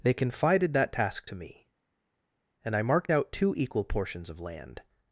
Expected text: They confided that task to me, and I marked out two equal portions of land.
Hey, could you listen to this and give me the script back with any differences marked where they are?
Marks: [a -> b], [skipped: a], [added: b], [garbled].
They confided that task to me, and I marked out two equal portions of land.